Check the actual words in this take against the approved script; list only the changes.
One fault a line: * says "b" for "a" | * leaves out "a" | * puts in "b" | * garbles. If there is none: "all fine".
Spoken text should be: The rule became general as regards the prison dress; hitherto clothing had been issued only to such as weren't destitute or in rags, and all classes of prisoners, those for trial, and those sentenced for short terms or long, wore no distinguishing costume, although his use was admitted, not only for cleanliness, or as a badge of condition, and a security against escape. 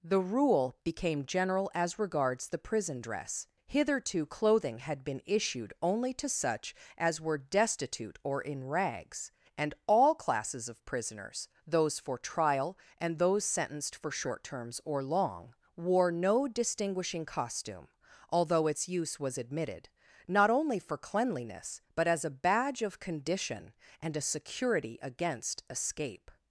* says "were" for "weren't"
* says "its" for "his"
* says "but" for "or"